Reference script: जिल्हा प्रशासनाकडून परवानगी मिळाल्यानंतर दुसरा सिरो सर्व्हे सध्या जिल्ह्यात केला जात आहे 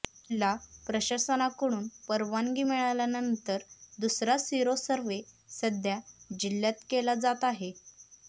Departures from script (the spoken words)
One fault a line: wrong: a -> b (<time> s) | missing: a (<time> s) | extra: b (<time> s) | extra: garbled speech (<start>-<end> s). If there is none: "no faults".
no faults